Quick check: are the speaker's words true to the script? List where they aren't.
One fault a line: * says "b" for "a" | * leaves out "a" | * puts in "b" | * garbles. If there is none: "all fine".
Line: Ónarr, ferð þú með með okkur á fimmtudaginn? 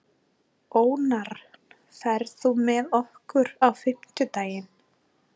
* leaves out "með"